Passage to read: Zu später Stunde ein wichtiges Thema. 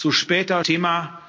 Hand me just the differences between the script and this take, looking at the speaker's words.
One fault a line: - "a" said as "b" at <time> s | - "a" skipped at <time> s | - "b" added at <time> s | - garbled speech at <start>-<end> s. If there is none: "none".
- "Stunde ein wichtiges" skipped at 0.6 s